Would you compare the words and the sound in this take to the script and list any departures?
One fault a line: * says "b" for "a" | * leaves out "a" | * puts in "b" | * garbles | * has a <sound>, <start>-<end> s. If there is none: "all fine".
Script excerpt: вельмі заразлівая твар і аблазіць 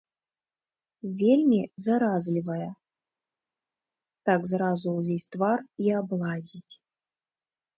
* puts in "так зразу ўвесь"